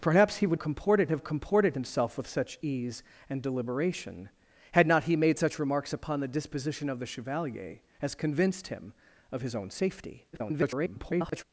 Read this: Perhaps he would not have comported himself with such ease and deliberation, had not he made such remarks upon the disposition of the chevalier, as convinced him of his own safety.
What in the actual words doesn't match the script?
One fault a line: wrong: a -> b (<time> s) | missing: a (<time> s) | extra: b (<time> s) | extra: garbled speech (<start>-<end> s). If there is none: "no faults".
wrong: not -> comported (0.6 s)
extra: garbled speech (10.3-11.4 s)